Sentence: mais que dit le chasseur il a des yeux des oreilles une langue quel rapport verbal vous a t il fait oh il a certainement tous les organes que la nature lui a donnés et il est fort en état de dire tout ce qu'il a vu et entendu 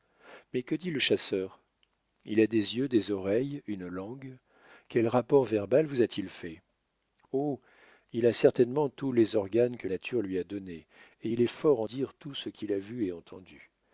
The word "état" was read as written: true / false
false